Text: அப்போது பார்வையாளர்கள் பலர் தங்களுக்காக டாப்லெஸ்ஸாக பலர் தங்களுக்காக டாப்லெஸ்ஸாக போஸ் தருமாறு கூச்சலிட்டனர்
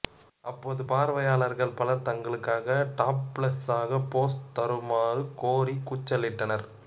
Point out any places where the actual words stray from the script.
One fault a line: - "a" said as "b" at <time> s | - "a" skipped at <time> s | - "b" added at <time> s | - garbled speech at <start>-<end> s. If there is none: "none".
- "பலர் தங்களுக்காக டாப்லெஸ்ஸாக" skipped at 4.0 s
- "கோரி" added at 5.4 s